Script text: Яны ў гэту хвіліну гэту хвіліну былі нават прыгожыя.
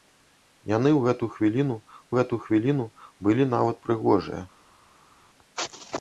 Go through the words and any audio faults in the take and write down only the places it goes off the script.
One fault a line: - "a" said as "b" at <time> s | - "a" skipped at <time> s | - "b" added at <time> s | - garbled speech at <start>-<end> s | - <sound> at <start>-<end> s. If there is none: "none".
none